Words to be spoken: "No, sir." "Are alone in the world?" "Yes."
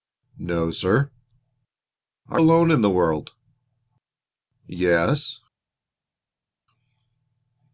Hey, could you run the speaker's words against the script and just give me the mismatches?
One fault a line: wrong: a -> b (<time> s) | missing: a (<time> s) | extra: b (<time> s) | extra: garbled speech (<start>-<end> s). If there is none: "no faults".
no faults